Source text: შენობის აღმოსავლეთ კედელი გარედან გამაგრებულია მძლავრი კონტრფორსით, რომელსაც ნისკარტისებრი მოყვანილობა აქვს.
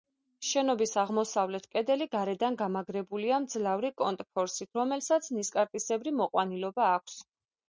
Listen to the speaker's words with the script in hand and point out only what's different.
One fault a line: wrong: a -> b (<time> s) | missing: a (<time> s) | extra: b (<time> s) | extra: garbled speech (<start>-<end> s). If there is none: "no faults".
no faults